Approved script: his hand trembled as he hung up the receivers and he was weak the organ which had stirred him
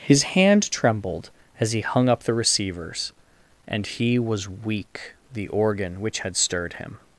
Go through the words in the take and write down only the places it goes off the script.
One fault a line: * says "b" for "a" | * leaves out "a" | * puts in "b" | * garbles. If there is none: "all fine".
all fine